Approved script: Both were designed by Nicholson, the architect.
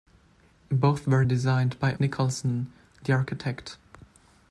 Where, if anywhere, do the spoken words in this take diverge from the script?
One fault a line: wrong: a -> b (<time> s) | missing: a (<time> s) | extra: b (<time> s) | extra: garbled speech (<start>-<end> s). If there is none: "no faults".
no faults